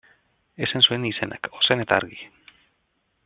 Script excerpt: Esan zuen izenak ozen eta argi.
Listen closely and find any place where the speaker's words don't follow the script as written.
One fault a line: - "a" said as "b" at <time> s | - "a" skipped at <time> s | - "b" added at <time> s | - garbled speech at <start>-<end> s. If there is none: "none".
none